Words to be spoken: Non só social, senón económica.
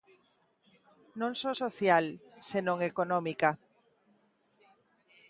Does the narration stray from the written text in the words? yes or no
no